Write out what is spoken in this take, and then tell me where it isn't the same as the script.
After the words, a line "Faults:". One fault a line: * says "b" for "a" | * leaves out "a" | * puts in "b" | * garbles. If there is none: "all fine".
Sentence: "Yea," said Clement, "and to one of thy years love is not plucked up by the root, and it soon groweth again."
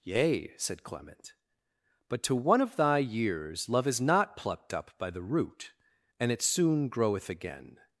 "Yea," said Clement, "but to one of thy years love is not plucked up by the root, and it soon groweth again."
Faults:
* says "but" for "and"